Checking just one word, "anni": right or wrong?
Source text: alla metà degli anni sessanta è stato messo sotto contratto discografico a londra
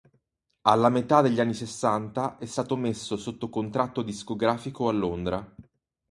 right